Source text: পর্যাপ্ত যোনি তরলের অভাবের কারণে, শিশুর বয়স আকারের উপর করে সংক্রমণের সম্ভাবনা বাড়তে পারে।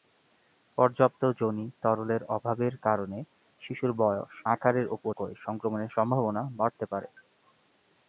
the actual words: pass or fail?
pass